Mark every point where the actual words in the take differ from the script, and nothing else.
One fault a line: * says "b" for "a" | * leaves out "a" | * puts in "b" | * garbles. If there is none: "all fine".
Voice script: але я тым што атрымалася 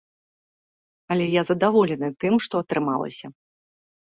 * puts in "задаволены"